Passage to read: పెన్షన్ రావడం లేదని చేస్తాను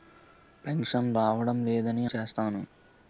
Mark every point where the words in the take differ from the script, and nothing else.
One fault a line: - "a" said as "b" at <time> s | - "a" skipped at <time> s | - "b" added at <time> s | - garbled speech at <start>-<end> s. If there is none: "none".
none